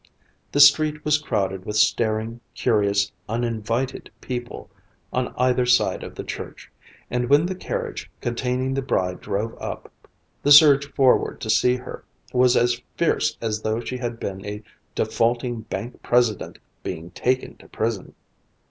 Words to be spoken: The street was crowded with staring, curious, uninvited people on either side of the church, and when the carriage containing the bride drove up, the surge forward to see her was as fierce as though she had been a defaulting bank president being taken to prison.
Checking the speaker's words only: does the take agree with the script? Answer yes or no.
yes